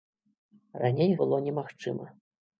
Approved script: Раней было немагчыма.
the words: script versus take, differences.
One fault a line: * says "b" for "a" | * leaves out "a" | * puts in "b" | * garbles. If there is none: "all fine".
all fine